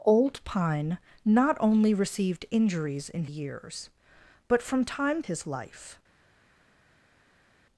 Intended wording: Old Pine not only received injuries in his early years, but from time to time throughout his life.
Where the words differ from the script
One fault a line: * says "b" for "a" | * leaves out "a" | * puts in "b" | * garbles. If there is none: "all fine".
* leaves out "his early"
* leaves out "to time throughout"